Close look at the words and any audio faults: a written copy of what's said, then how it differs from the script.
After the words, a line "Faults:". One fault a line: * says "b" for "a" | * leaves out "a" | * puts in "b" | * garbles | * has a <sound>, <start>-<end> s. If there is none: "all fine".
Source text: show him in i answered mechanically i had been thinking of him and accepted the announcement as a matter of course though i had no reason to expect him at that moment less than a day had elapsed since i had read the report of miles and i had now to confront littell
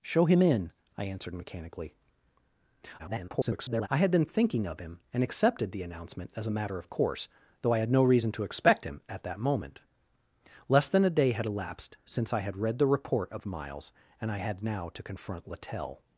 show him in i answered mechanically [garbled] i had been thinking of him and accepted the announcement as a matter of course though i had no reason to expect him at that moment less than a day had elapsed since i had read the report of miles and i had now to confront littell
Faults:
* garbles